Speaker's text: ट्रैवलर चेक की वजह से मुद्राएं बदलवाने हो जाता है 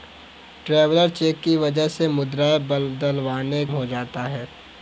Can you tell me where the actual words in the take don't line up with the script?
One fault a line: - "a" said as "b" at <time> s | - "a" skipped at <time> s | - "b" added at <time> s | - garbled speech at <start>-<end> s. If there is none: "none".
none